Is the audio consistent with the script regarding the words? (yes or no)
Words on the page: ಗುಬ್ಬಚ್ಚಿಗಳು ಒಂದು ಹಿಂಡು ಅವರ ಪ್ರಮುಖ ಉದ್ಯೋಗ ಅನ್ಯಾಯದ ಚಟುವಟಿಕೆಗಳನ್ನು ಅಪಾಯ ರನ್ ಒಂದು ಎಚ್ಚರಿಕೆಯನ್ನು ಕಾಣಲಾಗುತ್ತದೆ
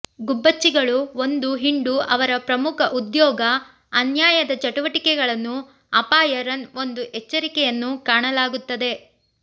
yes